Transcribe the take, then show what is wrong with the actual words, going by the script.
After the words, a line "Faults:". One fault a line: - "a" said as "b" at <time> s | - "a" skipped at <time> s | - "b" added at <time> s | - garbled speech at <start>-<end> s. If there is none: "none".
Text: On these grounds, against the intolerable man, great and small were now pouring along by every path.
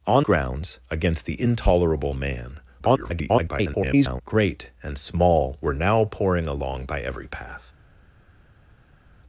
On grounds, against the intolerable man, [garbled] great and small were now pouring along by every path.
Faults:
- "these" skipped at 0.2 s
- garbled speech at 2.8-4.2 s